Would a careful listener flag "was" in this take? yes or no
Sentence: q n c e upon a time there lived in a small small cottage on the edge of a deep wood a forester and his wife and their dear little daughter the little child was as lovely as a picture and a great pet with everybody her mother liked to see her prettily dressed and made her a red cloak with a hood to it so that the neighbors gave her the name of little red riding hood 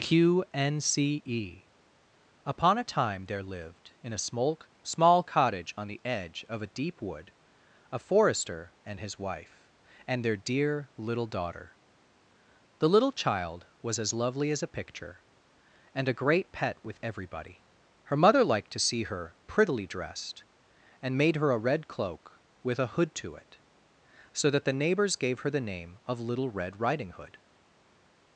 no